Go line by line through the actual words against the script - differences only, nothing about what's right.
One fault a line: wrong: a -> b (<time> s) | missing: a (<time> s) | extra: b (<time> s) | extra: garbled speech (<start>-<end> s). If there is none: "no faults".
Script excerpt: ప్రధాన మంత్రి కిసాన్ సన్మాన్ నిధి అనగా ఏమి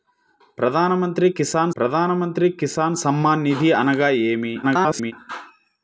extra: ప్రధాన మంత్రి కిసాన్ (1.8 s)
extra: garbled speech (4.6-5.1 s)